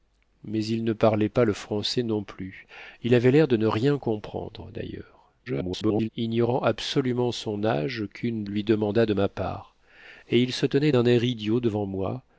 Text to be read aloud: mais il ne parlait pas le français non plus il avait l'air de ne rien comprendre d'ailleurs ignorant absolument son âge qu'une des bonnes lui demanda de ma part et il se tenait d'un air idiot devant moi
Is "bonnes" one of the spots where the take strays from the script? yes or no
yes